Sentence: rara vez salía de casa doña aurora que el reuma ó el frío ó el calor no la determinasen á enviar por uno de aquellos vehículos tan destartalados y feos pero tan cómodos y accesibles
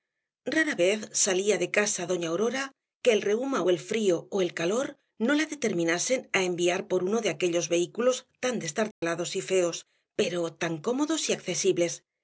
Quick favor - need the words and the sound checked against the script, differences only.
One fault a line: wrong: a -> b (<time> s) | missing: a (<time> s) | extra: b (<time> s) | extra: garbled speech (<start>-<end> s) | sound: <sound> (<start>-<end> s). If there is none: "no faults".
sound: dropout (8.9-9.0 s)